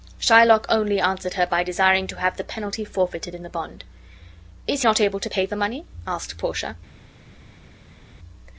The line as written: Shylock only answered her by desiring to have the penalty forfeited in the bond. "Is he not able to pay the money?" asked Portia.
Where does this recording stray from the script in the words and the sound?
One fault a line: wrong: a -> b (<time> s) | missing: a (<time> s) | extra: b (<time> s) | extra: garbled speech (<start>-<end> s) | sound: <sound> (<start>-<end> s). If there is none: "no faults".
missing: he (4.8 s)